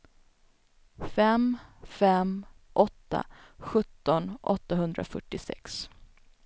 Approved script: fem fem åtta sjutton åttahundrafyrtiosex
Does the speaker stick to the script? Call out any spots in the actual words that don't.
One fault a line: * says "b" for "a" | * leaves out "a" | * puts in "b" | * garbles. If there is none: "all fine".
all fine